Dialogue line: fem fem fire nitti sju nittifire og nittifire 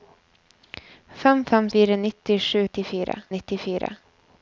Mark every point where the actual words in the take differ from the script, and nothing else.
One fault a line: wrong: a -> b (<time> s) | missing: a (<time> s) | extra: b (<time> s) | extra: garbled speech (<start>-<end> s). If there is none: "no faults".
no faults